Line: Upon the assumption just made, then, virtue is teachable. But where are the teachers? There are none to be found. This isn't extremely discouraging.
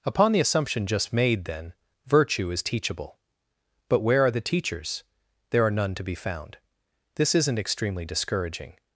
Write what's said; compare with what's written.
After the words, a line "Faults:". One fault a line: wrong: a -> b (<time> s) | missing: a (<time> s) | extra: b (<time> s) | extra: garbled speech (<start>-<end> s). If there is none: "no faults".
Upon the assumption just made, then, virtue is teachable. But where are the teachers? There are none to be found. This isn't extremely discouraging.
Faults:
no faults